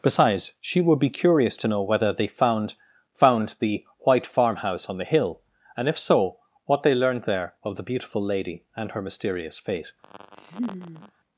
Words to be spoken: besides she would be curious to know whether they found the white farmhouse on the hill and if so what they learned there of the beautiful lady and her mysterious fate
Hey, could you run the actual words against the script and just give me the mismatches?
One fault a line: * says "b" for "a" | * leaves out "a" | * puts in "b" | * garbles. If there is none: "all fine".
* puts in "found"